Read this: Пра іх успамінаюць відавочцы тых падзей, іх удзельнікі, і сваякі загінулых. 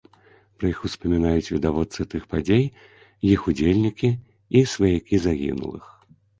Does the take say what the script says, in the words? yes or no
yes